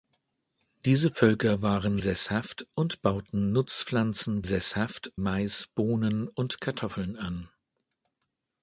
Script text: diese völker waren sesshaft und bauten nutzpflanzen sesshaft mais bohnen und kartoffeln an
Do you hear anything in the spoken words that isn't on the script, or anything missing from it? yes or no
no